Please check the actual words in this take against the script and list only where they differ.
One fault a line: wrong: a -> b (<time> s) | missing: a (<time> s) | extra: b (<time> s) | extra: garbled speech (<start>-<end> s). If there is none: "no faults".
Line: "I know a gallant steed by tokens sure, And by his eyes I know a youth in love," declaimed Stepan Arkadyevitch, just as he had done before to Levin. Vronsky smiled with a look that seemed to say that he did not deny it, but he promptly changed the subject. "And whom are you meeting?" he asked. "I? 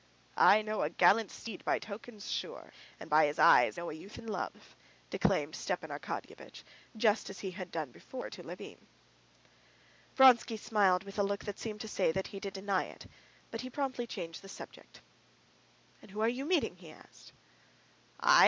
missing: I (3.8 s)
missing: not (12.5 s)